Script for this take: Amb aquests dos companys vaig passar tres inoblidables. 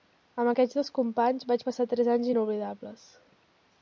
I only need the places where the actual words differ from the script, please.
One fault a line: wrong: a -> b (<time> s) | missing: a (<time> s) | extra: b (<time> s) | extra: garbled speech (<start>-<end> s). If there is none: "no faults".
extra: anys (2.2 s)